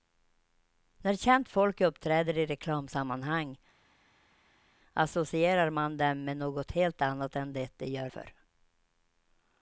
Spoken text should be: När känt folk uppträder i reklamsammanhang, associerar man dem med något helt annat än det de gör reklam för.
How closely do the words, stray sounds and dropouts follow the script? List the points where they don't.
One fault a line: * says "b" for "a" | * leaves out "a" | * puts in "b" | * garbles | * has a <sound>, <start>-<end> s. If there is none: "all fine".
* leaves out "reklam"